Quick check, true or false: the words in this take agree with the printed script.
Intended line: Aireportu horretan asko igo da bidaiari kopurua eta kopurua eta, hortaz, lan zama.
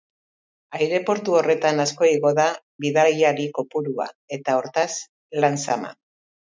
false